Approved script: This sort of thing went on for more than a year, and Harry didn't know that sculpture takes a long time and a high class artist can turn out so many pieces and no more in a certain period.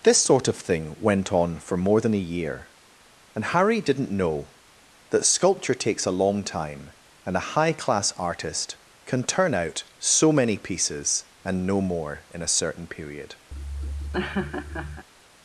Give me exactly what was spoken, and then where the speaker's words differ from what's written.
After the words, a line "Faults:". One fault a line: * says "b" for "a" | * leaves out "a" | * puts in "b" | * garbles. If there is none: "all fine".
This sort of thing went on for more than a year, and Harry didn't know that sculpture takes a long time and a high class artist can turn out so many pieces and no more in a certain period.
Faults:
all fine